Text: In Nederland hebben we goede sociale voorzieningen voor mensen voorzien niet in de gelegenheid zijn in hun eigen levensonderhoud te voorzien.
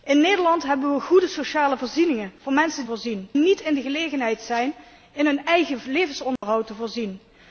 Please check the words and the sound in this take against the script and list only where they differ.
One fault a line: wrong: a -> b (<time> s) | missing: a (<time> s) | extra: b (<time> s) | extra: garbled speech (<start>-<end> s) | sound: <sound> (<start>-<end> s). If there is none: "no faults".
sound: dropout (6.4-6.4 s)